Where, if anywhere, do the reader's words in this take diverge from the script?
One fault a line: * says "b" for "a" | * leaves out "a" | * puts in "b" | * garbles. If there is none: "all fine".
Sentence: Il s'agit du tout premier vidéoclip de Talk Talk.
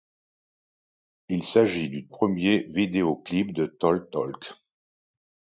* leaves out "tout"